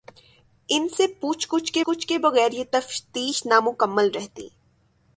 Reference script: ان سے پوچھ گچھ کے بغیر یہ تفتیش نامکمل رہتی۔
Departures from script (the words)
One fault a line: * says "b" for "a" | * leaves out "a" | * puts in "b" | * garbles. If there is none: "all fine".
* puts in "گچھ کے"